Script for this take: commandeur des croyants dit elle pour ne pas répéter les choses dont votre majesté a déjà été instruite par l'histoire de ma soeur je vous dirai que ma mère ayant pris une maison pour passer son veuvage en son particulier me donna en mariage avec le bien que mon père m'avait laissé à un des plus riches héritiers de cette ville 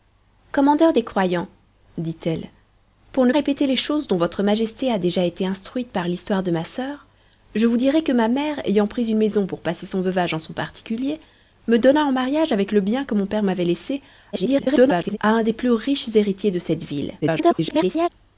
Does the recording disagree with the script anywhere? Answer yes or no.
yes